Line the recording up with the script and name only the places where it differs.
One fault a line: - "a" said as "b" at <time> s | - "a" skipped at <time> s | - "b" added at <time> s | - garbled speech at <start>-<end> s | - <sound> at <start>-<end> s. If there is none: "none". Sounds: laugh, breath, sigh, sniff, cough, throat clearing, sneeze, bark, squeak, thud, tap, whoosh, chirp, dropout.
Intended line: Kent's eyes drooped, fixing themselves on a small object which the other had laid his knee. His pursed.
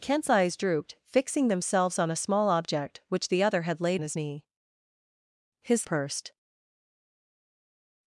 none